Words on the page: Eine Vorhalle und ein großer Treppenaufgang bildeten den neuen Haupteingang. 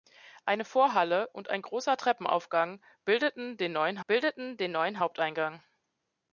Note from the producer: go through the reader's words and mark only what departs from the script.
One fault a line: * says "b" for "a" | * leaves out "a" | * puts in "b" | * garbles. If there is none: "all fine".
* puts in "bildeten den neuen"